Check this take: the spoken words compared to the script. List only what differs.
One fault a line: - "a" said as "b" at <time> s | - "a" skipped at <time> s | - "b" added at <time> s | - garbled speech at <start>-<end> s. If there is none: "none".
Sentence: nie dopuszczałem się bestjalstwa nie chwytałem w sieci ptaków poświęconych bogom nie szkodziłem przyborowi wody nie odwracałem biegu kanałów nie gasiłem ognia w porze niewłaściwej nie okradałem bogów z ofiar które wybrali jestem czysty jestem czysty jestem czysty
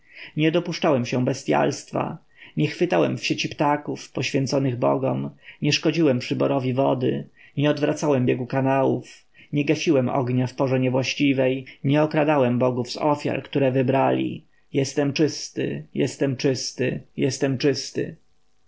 none